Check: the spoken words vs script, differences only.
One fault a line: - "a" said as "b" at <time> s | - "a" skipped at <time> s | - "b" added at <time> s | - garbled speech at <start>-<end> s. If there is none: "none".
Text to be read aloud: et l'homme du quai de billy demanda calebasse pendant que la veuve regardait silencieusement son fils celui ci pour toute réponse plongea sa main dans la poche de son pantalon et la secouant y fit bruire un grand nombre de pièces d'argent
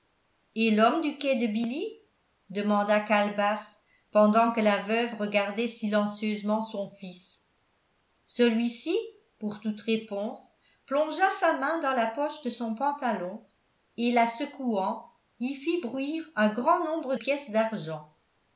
- "de" skipped at 17.1 s